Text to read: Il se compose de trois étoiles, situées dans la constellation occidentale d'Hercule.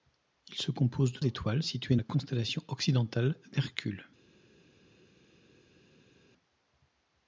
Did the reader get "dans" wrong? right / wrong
wrong